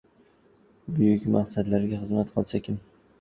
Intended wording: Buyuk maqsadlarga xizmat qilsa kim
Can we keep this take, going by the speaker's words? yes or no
yes